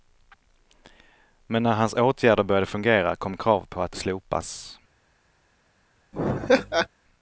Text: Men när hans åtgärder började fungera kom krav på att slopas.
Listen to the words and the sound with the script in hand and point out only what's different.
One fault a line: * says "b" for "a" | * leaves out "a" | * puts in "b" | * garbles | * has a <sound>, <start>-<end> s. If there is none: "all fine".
* has a laugh, 6.1-6.9 s